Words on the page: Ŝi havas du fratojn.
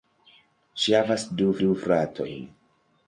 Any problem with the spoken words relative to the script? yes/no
yes